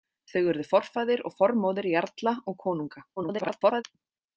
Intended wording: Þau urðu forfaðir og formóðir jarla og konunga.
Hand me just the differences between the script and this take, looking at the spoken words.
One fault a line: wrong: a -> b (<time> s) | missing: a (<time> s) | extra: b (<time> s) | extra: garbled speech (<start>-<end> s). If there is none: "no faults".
extra: garbled speech (3.2-3.8 s)